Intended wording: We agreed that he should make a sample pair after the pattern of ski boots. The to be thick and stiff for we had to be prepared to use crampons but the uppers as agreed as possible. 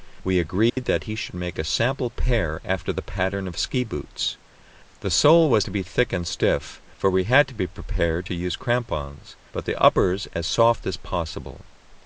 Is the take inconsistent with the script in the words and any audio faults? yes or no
yes